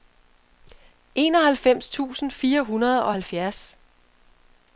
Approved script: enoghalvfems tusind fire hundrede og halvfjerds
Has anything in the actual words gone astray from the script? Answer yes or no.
no